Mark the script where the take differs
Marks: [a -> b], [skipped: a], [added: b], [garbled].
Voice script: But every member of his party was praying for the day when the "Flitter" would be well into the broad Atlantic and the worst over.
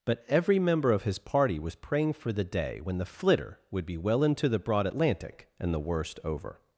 But every member of his party was praying for the day when the "Flitter" would be well into the broad Atlantic and the worst over.